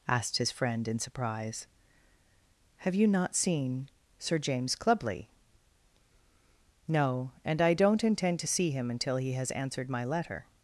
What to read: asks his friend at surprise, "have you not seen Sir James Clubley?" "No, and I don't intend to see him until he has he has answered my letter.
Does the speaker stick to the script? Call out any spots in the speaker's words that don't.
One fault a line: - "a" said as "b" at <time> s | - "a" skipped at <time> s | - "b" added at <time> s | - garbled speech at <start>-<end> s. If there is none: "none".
- "asks" said as "asked" at 0.1 s
- "at" said as "in" at 0.9 s
- "he has" skipped at 9.5 s